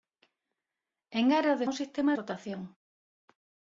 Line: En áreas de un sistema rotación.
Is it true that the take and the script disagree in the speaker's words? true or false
false